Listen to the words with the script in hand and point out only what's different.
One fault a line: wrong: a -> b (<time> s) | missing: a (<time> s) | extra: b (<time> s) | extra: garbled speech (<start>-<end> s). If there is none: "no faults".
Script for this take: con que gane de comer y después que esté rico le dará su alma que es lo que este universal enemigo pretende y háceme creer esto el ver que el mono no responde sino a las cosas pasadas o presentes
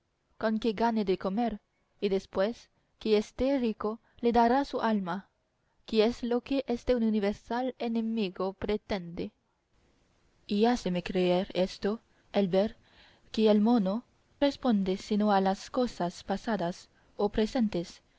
missing: no (14.0 s)